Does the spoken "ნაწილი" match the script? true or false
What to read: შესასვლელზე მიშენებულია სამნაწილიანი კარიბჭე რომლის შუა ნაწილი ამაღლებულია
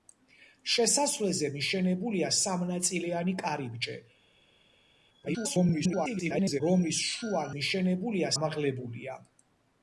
false